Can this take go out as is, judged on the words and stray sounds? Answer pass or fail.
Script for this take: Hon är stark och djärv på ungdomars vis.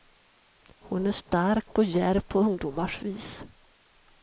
pass